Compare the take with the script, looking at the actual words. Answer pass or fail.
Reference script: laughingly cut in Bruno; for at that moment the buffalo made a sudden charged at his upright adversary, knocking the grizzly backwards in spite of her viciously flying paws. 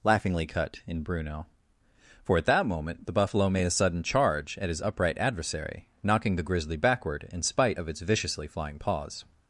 fail